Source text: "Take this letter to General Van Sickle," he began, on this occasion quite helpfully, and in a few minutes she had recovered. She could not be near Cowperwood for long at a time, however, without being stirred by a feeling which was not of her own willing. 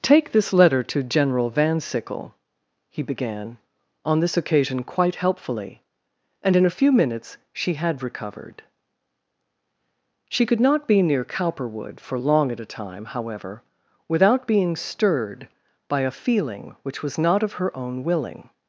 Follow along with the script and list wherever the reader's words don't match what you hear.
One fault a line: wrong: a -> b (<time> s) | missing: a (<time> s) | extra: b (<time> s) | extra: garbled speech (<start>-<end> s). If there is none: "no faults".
no faults